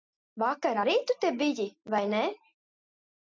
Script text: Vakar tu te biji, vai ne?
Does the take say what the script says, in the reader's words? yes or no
no